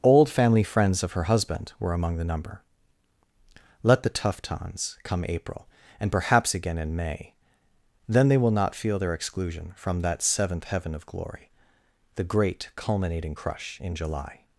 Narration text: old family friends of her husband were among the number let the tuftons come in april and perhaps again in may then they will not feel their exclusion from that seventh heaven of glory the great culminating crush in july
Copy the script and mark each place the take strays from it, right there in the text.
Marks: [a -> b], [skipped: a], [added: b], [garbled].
old family friends of her husband were among the number let the tuftons come [skipped: in] april and perhaps again in may then they will not feel their exclusion from that seventh heaven of glory the great culminating crush in july